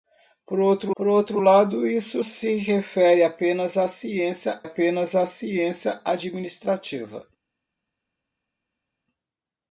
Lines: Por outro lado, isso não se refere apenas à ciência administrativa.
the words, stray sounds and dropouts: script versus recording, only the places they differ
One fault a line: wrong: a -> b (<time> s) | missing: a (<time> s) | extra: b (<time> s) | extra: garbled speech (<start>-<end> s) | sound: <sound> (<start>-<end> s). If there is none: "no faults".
extra: por outro (1.0 s)
missing: não (2.2 s)
extra: apenas à ciência (4.6 s)